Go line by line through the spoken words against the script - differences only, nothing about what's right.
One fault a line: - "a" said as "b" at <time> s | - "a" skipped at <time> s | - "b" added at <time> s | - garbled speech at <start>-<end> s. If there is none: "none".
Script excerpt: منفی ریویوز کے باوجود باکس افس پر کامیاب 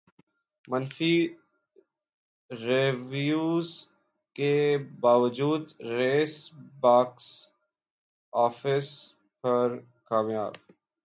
- "ریس" added at 5.9 s